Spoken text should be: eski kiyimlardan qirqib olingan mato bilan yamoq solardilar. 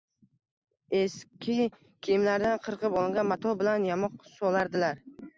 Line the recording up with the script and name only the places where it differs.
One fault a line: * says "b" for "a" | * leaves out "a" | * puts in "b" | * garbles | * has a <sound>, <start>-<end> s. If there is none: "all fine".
all fine